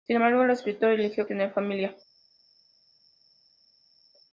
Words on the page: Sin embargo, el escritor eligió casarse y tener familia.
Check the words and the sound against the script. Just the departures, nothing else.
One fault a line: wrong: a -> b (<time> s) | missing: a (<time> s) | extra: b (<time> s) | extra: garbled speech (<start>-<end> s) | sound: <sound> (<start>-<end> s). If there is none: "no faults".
missing: casarse (1.2 s)